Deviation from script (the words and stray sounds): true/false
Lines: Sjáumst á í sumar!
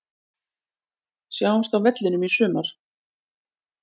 true